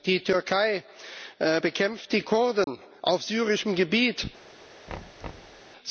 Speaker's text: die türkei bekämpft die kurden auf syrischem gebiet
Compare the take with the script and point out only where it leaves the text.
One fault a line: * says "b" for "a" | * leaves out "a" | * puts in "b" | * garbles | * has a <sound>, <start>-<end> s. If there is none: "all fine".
* has a dropout, 2.6-2.7 s
* has a thud, 4.9-5.6 s